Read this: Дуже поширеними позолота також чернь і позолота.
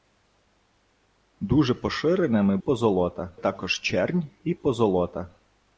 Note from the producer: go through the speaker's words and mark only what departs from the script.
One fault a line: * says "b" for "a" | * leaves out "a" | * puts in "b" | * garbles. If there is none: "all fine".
all fine